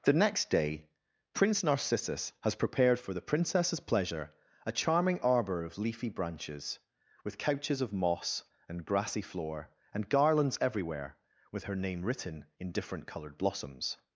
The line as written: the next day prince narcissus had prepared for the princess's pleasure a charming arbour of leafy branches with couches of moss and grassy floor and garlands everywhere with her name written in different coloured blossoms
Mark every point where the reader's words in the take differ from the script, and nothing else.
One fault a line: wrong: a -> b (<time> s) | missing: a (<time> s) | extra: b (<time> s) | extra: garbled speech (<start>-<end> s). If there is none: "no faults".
wrong: had -> has (2.4 s)